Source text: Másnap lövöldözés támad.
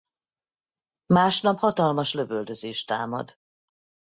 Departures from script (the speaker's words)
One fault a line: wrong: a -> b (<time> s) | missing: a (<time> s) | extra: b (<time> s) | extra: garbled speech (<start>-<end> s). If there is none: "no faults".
extra: hatalmas (1.5 s)